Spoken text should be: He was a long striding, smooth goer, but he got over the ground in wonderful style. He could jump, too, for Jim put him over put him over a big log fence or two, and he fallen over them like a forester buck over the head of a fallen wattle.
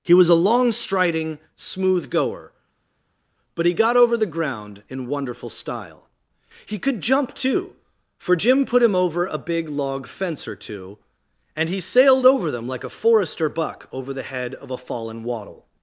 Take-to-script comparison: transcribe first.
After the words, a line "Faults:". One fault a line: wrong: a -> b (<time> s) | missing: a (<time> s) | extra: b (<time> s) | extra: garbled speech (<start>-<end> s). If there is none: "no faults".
He was a long striding, smooth goer, but he got over the ground in wonderful style. He could jump, too, for Jim put him over a big log fence or two, and he sailed over them like a forester buck over the head of a fallen wattle.
Faults:
missing: put him over (9.3 s)
wrong: fallen -> sailed (11.8 s)